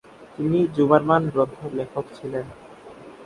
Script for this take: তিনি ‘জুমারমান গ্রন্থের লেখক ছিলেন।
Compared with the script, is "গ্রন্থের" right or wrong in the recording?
right